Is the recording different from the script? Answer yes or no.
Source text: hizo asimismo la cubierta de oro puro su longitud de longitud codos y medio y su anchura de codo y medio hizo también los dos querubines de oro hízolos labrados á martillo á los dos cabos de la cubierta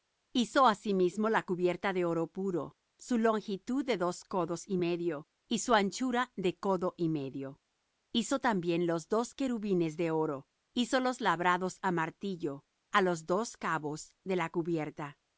yes